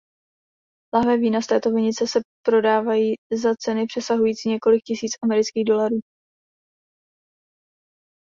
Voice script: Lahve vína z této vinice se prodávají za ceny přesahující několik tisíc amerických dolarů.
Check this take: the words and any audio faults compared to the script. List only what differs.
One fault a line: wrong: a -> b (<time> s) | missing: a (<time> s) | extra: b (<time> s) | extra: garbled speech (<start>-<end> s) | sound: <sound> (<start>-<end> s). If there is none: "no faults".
no faults